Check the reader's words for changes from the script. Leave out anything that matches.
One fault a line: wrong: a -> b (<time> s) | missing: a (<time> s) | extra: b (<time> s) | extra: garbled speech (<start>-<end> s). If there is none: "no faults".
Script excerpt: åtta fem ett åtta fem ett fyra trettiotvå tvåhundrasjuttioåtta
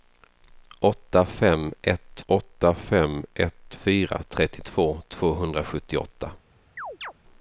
no faults